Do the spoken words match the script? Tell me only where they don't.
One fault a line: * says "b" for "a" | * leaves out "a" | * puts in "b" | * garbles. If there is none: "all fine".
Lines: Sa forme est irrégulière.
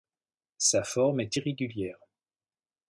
all fine